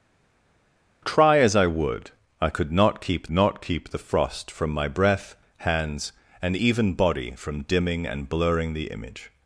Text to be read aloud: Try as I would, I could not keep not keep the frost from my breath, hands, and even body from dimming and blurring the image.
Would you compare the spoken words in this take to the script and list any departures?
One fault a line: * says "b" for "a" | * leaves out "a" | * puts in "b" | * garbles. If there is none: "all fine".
all fine